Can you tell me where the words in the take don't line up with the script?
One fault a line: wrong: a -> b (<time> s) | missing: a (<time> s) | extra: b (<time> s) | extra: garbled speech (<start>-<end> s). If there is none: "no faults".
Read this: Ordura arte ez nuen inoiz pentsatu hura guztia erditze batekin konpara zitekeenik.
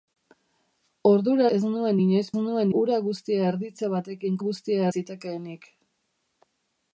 missing: arte (1.4 s)
wrong: pentsatu -> nuen (2.4 s)
wrong: konpara -> guztia (4.5 s)